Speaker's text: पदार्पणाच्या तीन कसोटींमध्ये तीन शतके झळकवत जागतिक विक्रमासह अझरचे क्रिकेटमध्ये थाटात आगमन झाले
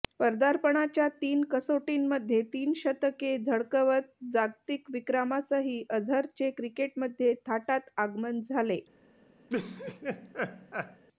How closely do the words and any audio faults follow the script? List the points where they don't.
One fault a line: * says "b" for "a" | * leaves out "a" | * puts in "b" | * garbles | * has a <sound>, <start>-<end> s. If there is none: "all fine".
* has a laugh, 9.5-11.0 s